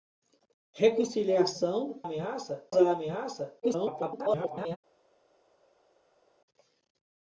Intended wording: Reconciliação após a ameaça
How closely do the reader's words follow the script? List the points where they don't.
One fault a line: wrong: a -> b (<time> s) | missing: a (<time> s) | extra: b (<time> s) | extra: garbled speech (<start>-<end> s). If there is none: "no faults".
wrong: após -> ameaça (2.0 s)
extra: garbled speech (3.6-4.8 s)